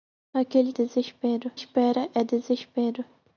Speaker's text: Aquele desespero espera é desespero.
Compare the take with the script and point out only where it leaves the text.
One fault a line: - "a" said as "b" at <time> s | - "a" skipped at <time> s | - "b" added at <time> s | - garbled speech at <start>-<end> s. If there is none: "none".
none